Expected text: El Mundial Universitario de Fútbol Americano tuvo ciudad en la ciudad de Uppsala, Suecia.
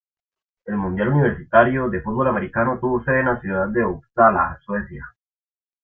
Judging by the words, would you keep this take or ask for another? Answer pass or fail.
fail